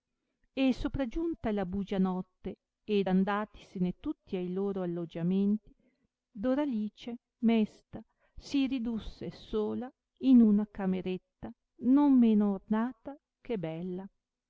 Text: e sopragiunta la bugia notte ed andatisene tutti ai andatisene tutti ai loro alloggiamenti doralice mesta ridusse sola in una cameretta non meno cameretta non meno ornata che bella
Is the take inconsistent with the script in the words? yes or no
yes